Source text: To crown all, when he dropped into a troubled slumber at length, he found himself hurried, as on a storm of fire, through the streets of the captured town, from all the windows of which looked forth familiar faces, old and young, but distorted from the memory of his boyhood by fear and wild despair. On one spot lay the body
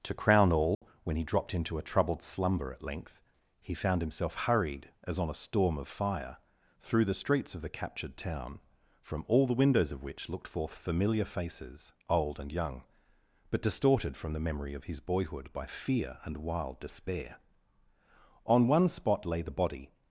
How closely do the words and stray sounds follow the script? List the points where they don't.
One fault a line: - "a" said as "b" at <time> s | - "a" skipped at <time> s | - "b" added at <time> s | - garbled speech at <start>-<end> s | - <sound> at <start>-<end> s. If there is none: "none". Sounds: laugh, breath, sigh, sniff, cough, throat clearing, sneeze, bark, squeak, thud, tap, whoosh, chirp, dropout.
- dropout at 0.7-0.8 s